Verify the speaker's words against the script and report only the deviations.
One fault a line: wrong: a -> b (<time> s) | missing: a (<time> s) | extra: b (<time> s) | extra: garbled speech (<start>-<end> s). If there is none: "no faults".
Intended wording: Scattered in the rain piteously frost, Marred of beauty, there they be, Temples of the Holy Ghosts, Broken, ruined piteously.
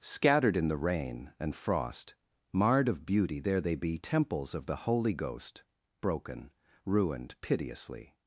wrong: piteously -> and (1.4 s)
wrong: Ghosts -> Ghost (5.1 s)